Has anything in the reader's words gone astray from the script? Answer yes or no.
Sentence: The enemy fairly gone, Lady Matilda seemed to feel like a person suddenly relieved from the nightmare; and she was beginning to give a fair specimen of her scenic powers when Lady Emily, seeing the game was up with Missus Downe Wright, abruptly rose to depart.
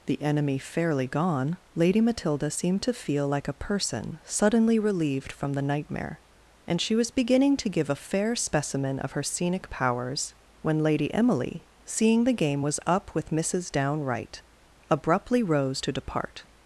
no